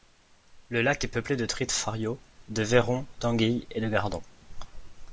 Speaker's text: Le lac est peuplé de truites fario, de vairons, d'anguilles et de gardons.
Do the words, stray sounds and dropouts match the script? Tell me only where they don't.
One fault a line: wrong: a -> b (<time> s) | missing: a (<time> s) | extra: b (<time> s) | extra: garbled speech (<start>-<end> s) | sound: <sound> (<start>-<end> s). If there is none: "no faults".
no faults